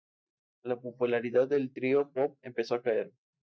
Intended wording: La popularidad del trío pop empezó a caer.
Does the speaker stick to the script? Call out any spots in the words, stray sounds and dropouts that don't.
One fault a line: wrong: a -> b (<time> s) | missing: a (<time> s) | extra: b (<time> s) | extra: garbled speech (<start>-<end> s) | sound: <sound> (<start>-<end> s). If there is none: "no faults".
no faults